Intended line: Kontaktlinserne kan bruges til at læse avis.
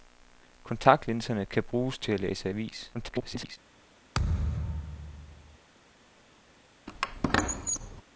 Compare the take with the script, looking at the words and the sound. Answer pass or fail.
fail